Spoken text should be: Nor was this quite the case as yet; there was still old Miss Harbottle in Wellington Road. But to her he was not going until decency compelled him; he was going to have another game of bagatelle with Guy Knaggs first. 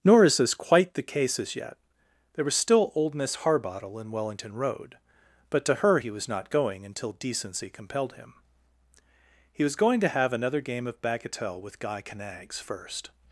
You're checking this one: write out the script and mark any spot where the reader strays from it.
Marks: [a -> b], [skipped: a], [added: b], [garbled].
Nor [was -> is] this quite the case as yet; there was still old Miss Harbottle in Wellington Road. But to her he was not going until decency compelled him; he was going to have another game of bagatelle with Guy Knaggs first.